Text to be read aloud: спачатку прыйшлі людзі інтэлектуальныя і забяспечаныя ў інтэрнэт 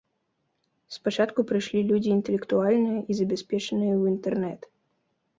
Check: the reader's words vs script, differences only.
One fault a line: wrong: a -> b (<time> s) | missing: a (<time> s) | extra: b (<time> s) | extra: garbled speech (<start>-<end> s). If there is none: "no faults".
no faults